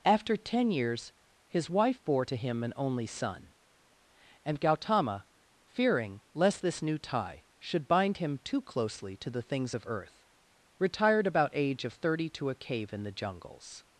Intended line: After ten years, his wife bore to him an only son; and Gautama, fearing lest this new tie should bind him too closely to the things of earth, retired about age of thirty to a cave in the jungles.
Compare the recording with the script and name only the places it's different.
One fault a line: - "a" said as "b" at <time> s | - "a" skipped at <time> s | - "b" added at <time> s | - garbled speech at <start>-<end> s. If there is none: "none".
none